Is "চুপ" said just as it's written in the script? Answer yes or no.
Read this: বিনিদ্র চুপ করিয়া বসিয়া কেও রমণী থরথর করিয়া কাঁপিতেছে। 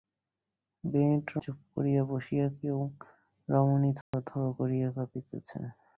yes